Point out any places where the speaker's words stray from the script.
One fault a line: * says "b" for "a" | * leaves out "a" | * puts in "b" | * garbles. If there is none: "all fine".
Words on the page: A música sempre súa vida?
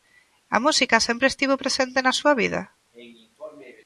* puts in "estivo presente na"